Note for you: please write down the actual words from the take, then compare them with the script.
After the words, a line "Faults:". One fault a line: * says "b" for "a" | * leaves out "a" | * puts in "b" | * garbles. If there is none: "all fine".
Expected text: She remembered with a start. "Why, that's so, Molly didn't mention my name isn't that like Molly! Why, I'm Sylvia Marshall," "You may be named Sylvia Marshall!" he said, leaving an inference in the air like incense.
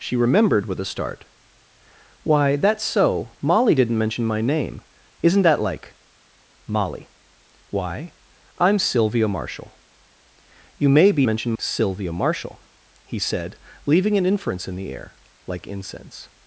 She remembered with a start. "Why, that's so, Molly didn't mention my name isn't that like Molly! Why, I'm Sylvia Marshall," "You may be mention Sylvia Marshall!" he said, leaving an inference in the air like incense.
Faults:
* says "mention" for "named"